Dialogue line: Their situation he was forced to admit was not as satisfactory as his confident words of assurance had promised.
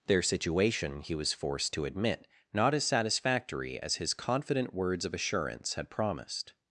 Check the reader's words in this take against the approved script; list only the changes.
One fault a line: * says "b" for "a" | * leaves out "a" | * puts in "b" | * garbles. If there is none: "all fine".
* leaves out "was"